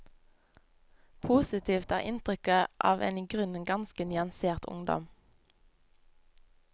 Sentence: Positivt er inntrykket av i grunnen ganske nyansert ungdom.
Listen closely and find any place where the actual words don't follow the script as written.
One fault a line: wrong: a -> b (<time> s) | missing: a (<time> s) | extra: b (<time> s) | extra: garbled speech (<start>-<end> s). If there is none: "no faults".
extra: en (3.0 s)